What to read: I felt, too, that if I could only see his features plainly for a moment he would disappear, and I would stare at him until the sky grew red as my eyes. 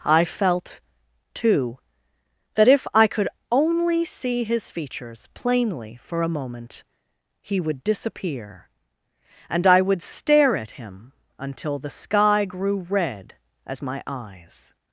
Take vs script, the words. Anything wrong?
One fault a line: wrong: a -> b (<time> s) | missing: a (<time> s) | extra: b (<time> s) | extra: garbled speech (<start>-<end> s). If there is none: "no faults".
no faults